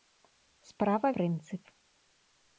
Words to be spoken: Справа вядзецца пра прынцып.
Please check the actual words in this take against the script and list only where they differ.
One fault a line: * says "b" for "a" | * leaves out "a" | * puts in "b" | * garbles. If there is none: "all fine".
* leaves out "вядзецца пра"